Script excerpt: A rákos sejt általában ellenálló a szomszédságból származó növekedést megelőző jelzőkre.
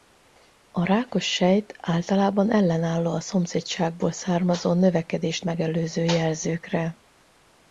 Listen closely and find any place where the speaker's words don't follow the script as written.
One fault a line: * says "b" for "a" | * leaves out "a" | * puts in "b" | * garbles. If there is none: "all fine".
all fine